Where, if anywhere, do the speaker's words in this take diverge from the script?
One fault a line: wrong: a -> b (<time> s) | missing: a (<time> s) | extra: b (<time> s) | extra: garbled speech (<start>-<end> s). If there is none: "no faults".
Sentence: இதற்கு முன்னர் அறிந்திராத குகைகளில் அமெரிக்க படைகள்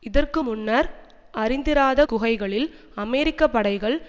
no faults